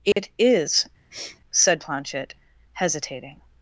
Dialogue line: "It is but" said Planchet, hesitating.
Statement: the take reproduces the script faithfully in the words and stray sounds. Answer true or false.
false